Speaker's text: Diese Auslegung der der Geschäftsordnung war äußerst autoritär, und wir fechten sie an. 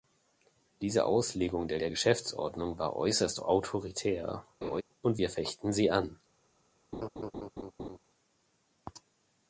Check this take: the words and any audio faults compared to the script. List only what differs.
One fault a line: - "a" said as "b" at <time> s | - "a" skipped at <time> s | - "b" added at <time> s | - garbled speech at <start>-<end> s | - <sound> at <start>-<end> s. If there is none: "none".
- laugh at 4.6-4.8 s
- laugh at 6.9-8.0 s